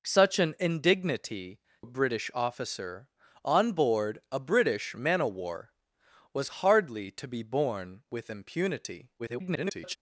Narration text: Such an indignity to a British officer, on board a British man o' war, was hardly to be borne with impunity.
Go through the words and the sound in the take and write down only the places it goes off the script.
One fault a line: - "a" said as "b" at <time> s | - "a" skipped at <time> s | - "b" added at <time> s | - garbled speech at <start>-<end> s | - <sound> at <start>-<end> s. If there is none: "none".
- "to" skipped at 1.6 s
- garbled speech at 9.2-10.0 s